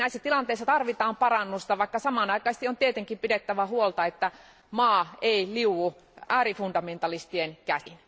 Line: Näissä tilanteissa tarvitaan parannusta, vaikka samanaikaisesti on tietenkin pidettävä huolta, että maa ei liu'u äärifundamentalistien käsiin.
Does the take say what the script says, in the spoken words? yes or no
yes